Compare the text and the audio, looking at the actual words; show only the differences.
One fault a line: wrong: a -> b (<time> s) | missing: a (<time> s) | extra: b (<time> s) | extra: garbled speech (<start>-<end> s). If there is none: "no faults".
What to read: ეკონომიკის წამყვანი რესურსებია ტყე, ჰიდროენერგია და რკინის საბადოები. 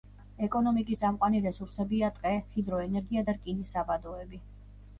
no faults